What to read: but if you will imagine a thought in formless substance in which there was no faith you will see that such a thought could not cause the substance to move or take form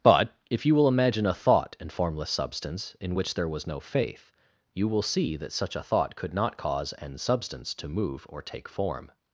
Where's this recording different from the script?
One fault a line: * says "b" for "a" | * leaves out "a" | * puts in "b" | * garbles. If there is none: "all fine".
* says "an" for "the"